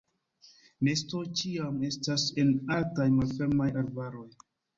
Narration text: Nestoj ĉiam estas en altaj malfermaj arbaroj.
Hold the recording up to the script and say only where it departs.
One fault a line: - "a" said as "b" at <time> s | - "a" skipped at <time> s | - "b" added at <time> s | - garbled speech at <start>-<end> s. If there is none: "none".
none